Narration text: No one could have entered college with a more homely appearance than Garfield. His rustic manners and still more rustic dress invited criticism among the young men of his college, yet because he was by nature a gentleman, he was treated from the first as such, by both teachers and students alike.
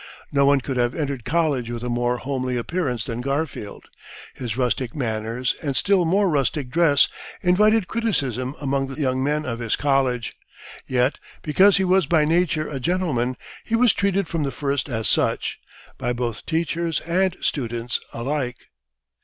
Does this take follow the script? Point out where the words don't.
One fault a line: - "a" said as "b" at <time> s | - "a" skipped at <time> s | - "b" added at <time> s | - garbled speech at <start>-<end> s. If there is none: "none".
none